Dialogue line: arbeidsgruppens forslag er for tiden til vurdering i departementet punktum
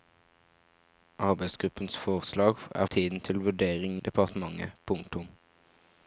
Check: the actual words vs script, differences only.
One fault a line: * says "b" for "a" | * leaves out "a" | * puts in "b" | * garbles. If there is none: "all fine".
* leaves out "for"
* leaves out "i"